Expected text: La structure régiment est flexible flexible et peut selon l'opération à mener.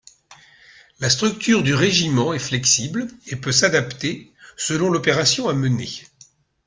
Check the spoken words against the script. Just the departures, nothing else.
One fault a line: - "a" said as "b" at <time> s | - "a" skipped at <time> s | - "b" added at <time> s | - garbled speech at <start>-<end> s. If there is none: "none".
- "du" added at 1.6 s
- "flexible" skipped at 3.1 s
- "s'adapter" added at 3.5 s